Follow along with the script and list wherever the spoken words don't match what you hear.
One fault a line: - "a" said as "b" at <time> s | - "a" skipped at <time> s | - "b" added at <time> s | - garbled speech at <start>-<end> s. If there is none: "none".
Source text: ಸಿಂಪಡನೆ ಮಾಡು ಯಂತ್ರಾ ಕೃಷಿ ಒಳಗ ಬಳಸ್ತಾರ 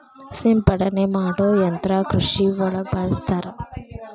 none